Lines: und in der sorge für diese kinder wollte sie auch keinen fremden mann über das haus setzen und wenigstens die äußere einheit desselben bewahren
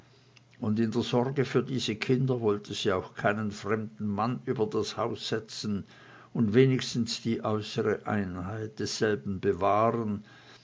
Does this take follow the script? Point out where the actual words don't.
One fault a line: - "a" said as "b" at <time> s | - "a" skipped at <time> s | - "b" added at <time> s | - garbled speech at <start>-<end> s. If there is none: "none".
none